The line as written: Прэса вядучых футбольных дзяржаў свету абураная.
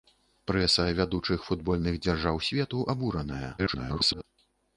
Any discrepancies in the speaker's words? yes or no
yes